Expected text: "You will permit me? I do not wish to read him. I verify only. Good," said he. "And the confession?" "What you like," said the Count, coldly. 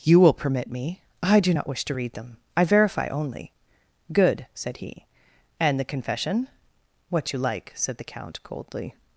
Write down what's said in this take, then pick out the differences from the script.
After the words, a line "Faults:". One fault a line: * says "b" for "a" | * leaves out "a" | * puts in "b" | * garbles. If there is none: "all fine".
"You will permit me? I do not wish to read them. I verify only. Good," said he. "And the confession?" "What you like," said the Count, coldly.
Faults:
* says "them" for "him"